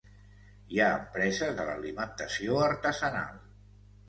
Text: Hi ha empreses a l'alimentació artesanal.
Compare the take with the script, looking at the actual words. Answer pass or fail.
pass